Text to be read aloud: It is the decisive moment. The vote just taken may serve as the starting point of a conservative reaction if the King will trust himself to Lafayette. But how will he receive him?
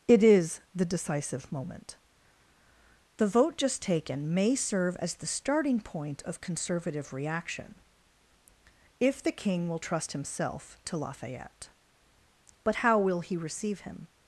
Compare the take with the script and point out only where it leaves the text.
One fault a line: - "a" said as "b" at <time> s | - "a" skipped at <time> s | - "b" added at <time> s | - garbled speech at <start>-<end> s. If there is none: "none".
- "a" skipped at 6.4 s